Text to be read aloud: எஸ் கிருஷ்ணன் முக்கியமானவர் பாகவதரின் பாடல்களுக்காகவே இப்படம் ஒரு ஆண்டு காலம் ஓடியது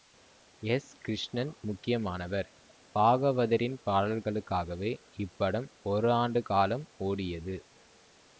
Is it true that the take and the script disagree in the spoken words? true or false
false